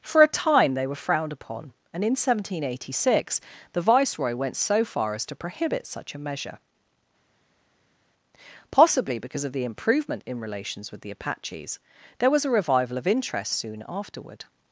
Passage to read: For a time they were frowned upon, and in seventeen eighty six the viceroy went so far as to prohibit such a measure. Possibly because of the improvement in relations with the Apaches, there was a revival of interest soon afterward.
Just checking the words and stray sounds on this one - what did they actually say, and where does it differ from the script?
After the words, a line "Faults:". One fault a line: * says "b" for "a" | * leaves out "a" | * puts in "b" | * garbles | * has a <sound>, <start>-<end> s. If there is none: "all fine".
For a time they were frowned upon, and in seventeen eighty six the viceroy went so far as to prohibit such a measure. Possibly because of the improvement in relations with the Apaches, there was a revival of interest soon afterward.
Faults:
all fine